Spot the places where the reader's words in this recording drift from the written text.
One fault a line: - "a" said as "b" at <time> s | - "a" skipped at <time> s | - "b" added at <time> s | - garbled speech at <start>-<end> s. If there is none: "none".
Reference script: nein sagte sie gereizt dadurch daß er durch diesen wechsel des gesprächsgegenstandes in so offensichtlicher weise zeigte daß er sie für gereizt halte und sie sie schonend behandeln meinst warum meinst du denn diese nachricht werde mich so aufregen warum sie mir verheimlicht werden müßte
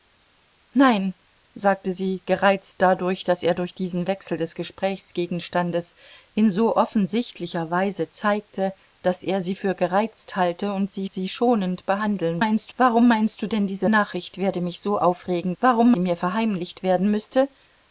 none